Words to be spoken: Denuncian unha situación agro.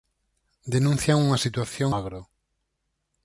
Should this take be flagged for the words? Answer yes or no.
no